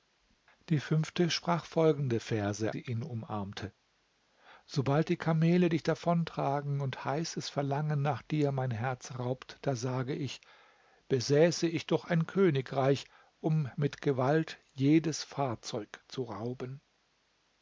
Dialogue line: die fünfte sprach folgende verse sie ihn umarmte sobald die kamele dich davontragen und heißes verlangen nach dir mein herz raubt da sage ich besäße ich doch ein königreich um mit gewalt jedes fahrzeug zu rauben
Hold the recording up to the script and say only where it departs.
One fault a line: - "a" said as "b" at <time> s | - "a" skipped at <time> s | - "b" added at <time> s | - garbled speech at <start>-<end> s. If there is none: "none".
none